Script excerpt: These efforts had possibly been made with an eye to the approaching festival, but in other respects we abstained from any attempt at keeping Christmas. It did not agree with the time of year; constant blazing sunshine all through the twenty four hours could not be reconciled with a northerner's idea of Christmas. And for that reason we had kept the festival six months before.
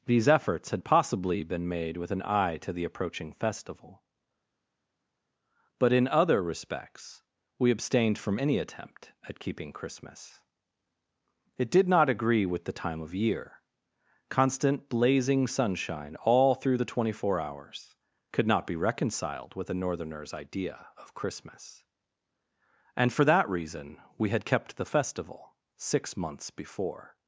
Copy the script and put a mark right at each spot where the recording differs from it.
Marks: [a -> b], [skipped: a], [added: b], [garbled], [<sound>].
These efforts had possibly been made with an eye to the approaching festival, but in other respects we abstained from any attempt at keeping Christmas. It did not agree with the time of year; constant blazing sunshine all through the twenty four hours could not be reconciled with a northerner's idea of Christmas. And for that reason we had kept the festival six months before.